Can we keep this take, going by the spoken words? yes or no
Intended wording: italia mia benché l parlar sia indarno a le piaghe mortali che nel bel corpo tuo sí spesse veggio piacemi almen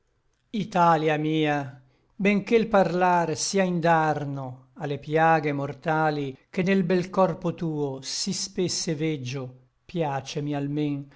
yes